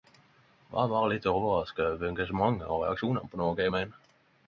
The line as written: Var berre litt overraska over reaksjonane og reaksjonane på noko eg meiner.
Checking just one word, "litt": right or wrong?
right